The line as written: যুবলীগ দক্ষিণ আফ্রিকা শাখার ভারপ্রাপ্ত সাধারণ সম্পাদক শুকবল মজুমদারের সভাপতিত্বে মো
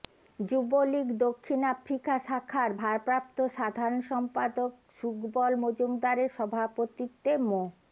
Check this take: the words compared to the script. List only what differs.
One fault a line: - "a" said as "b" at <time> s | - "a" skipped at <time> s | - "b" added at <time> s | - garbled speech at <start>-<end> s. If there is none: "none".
none